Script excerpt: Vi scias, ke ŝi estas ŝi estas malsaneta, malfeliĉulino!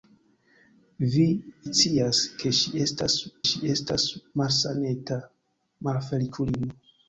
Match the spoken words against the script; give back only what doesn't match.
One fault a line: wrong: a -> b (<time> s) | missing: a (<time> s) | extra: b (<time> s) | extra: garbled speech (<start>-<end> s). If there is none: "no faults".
no faults